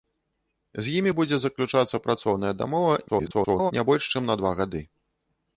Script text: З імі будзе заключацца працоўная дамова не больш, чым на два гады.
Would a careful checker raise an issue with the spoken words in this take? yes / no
yes